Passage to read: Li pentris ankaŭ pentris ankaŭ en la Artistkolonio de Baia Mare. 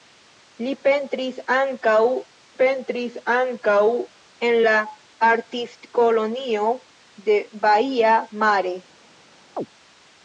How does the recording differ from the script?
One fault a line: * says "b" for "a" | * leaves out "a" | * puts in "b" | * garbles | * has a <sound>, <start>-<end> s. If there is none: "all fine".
* has a chirp, 9.6-9.7 s